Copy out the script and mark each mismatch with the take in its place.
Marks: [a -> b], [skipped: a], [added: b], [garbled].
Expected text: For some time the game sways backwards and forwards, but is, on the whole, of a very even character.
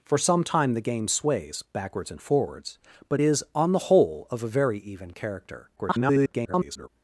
For some time the game sways backwards and forwards, but is, on the whole, of a very even character. [garbled]